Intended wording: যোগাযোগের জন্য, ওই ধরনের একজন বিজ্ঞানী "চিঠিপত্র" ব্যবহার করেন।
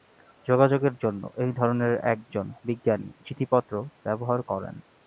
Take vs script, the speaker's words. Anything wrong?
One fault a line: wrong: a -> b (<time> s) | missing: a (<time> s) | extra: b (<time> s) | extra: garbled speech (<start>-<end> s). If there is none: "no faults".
wrong: ওই -> এই (1.4 s)